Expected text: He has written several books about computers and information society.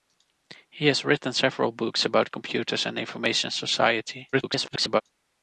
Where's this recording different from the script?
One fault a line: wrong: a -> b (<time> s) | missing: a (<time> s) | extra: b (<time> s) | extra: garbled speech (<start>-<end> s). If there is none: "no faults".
extra: garbled speech (4.3-5.0 s)